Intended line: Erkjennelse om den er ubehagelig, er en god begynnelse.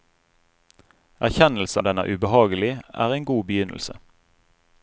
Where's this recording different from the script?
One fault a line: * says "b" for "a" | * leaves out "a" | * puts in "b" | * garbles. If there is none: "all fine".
all fine